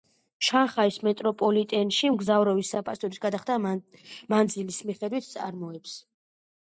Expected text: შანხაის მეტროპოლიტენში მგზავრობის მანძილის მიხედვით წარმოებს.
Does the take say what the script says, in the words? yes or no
no